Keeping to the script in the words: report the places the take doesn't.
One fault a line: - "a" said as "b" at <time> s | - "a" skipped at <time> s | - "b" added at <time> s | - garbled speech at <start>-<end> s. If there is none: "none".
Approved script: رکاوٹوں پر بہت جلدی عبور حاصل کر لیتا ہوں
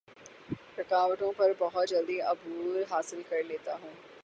none